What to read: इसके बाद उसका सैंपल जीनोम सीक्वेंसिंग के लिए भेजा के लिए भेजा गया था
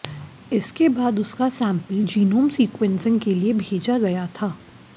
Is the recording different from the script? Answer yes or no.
yes